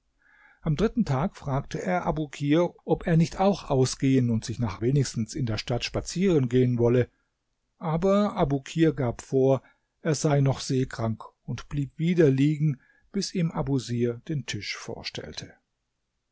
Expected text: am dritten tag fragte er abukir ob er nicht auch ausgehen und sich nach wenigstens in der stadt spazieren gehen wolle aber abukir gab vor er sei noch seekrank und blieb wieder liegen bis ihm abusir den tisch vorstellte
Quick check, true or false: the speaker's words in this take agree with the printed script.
true